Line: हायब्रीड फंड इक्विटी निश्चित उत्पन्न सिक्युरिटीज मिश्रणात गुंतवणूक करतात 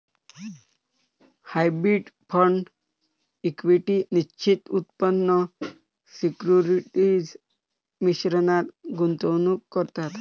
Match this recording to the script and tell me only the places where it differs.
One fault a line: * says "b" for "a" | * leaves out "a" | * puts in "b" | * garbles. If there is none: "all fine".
all fine